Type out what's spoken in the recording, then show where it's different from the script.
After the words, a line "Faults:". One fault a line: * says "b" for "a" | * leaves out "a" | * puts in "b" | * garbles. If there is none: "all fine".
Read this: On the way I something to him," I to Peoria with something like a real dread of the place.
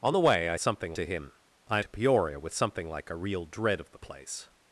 On the way I something to him," I to Peoria with something like a real dread of the place.
Faults:
all fine